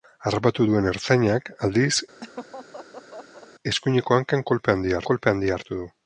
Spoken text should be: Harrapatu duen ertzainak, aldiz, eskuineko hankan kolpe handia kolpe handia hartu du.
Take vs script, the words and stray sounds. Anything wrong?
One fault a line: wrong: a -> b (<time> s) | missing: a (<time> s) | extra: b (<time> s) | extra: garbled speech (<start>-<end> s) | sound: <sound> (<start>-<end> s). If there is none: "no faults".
sound: laugh (2.2-3.5 s)